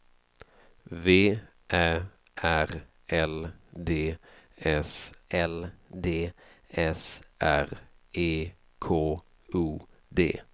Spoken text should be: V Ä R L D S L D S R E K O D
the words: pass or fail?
pass